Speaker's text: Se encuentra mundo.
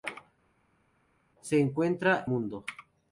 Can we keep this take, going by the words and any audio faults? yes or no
yes